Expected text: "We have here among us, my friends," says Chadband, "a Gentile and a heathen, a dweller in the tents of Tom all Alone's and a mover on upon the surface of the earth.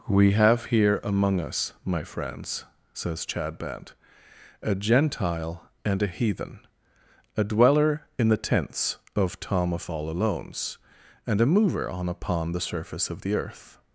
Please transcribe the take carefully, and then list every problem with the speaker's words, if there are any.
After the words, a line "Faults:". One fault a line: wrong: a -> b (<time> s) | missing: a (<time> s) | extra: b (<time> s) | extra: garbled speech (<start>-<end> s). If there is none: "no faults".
"We have here among us, my friends," says Chadband, "a Gentile and a heathen, a dweller in the tents of Tom of all Alone's and a mover on upon the surface of the earth.
Faults:
extra: of (9.7 s)